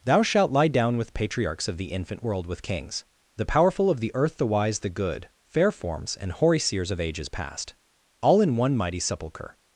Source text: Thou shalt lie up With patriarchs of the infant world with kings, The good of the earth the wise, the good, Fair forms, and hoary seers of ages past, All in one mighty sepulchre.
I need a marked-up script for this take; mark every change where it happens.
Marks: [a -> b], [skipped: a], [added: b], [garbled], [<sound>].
Thou shalt lie [up -> down] With patriarchs of the infant world with kings, The [good -> powerful] of the earth the wise, the good, Fair forms, and hoary seers of ages past, All in one mighty sepulchre.